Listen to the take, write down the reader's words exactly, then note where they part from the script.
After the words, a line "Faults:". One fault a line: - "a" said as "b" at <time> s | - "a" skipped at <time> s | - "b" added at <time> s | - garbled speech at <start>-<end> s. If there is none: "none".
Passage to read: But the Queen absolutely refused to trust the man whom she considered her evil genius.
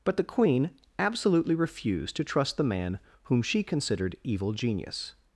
But the Queen absolutely refused to trust the man whom she considered evil genius.
Faults:
- "her" skipped at 4.2 s